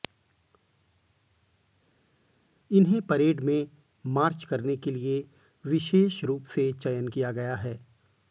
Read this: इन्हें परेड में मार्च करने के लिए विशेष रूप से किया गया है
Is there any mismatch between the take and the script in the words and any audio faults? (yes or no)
yes